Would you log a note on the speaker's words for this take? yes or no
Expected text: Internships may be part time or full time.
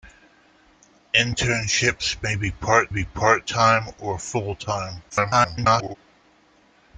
yes